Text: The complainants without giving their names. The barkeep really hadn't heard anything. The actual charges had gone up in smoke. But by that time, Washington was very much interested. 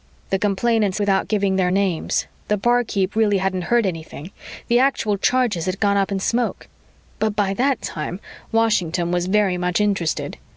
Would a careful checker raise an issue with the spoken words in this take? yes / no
no